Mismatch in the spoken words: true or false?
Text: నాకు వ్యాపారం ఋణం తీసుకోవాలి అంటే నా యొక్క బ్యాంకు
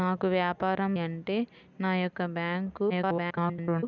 true